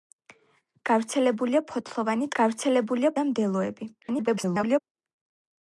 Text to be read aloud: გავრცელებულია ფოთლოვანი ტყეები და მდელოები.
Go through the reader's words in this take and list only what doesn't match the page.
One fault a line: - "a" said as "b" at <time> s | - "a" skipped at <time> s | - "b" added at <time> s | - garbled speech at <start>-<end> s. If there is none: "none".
- "ტყეები" said as "გავრცელებულია" at 2.4 s
- garbled speech at 4.0-4.8 s